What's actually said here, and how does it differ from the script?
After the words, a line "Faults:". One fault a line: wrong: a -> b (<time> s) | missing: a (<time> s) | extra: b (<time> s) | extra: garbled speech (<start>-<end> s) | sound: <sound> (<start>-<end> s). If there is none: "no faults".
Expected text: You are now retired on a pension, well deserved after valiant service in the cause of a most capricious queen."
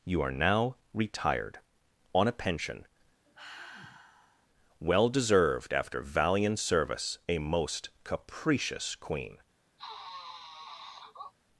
You are now retired on a pension, well deserved after valiant service a most capricious queen."
Faults:
sound: sigh (3.3-4.5 s)
missing: in the cause of (7.2 s)
sound: sniff (9.8-11.3 s)